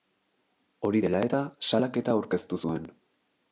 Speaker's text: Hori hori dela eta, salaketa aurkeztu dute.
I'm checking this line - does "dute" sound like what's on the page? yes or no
no